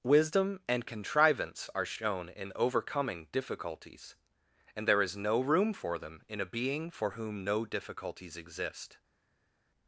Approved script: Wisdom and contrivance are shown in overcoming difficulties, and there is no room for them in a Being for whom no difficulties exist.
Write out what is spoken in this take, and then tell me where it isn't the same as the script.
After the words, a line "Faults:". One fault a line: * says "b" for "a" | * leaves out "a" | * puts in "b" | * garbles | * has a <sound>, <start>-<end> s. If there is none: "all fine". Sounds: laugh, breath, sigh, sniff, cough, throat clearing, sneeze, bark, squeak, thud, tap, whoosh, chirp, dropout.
Wisdom and contrivance are shown in overcoming difficulties, and there is no room for them in a Being for whom no difficulties exist.
Faults:
all fine